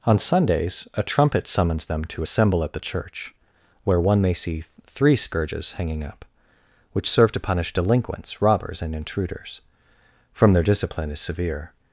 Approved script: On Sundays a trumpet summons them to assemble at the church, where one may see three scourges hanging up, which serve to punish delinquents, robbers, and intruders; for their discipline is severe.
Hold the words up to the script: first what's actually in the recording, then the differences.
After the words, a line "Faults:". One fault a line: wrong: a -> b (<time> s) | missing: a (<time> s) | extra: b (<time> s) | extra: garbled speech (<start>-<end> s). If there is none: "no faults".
On Sundays a trumpet summons them to assemble at the church, where one may see three scourges hanging up, which serve to punish delinquents, robbers, and intruders; from their discipline is severe.
Faults:
wrong: for -> from (10.3 s)